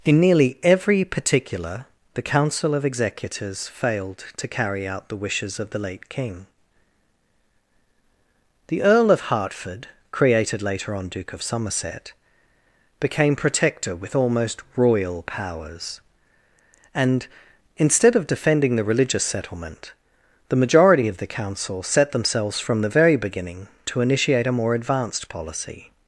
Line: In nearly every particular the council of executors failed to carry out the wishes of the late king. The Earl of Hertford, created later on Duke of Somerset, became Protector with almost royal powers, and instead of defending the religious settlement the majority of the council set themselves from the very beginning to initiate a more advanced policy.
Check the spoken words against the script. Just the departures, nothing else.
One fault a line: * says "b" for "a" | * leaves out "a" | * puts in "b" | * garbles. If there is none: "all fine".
all fine